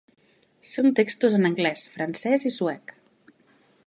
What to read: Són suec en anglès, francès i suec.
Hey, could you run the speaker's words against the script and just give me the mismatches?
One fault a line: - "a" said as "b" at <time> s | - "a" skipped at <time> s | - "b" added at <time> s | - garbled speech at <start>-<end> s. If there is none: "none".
- "suec" said as "textos" at 1.0 s